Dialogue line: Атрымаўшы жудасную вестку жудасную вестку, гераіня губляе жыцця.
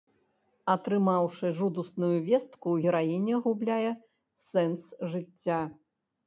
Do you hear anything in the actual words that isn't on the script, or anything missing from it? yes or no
yes